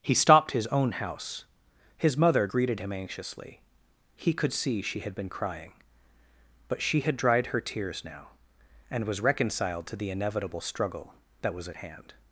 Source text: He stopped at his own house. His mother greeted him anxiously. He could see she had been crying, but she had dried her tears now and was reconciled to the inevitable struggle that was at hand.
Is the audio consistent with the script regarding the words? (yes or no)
no